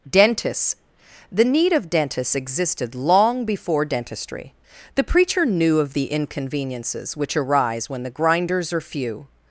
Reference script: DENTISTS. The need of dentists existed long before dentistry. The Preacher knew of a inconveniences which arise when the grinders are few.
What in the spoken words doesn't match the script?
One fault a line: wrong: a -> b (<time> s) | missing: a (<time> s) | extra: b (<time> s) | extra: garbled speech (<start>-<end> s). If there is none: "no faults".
wrong: a -> the (5.9 s)